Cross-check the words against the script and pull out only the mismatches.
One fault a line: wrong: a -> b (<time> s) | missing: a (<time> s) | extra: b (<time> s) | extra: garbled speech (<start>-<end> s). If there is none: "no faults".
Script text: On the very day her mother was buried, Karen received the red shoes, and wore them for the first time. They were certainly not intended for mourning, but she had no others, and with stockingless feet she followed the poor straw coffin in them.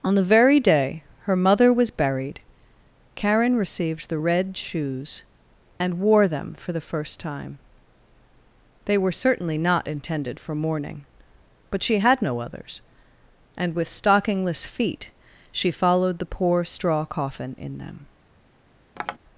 no faults